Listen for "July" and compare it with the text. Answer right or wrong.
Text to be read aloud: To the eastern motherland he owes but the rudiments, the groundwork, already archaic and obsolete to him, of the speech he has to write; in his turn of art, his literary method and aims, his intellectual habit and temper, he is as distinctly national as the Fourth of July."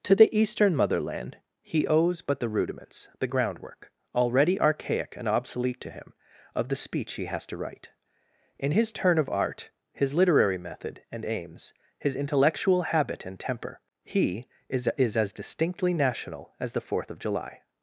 right